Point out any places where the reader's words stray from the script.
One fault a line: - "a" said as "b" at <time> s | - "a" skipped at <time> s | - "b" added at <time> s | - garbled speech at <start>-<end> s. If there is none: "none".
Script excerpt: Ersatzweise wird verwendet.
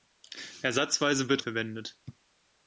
none